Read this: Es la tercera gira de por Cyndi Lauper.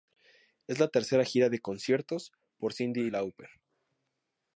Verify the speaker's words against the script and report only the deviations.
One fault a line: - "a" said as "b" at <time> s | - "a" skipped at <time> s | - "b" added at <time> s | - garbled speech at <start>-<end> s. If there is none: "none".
- "conciertos" added at 1.6 s